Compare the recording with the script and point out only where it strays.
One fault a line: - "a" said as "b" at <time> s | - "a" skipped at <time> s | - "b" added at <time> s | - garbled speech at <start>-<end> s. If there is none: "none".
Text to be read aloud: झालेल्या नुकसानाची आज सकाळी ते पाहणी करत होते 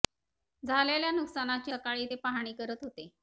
- "आज" skipped at 1.7 s